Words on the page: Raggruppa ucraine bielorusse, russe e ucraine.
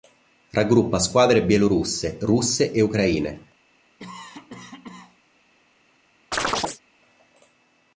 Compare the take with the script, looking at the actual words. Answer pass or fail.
fail